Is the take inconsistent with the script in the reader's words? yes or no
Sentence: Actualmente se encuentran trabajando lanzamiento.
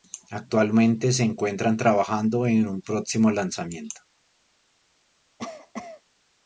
yes